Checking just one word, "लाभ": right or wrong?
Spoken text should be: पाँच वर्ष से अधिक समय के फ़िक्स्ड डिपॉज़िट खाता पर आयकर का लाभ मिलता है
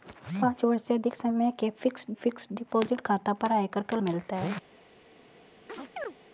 wrong